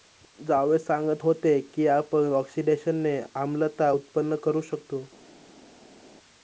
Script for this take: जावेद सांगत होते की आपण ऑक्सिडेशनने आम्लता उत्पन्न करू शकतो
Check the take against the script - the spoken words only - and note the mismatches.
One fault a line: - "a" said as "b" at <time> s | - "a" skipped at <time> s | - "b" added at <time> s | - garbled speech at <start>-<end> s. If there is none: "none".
none